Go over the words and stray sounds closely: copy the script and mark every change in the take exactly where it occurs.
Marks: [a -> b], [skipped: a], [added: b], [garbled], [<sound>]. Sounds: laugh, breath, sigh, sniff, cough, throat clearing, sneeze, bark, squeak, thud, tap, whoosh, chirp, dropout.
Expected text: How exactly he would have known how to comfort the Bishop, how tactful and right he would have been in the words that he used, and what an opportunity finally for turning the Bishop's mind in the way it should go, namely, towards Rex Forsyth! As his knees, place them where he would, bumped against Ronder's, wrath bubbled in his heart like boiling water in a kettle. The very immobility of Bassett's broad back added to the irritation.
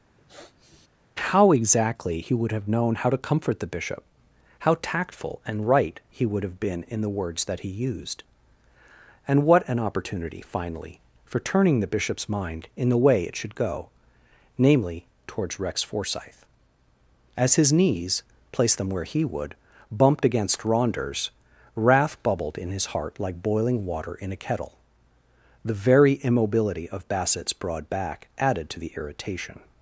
[sniff] How exactly he would have known how to comfort the Bishop, how tactful and right he would have been in the words that he used, and what an opportunity finally for turning the Bishop's mind in the way it should go, namely, towards Rex Forsyth! As his knees, place them where he would, bumped against Ronder's, wrath bubbled in his heart like boiling water in a kettle. The very immobility of Bassett's broad back added to the irritation.